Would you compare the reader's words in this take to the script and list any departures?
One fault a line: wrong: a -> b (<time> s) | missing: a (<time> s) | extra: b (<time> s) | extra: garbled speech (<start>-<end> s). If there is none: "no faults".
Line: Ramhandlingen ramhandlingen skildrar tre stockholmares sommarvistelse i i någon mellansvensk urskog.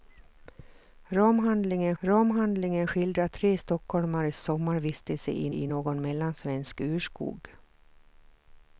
no faults